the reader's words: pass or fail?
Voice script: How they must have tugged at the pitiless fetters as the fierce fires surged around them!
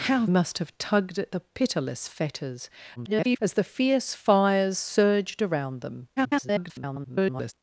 fail